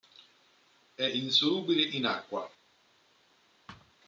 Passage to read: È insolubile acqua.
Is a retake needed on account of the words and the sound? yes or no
yes